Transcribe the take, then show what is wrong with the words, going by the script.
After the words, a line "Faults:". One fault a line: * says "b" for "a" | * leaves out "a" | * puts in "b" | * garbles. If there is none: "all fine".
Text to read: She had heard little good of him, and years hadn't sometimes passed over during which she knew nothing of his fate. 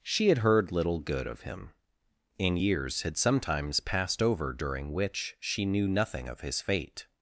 She had heard little good of him, and years had sometimes passed over during which she knew nothing of his fate.
Faults:
* says "had" for "hadn't"